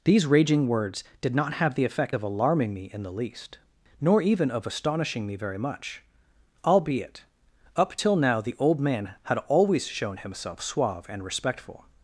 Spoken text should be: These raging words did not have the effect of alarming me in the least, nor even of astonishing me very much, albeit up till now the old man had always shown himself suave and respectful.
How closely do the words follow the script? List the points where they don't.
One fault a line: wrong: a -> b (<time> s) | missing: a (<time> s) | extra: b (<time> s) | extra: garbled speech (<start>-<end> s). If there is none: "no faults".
no faults